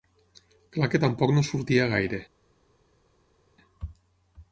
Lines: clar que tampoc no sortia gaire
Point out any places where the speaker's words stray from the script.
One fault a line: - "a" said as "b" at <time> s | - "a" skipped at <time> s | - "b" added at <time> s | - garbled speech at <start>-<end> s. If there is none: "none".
none